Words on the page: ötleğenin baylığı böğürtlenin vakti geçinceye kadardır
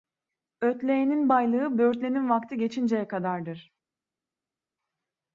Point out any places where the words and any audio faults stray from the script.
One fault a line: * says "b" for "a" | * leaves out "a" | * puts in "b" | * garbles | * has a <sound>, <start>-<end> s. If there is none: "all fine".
all fine